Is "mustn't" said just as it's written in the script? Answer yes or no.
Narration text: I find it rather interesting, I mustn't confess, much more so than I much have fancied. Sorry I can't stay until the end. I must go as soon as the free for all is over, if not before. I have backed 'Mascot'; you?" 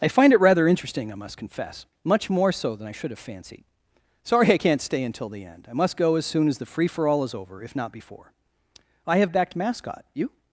no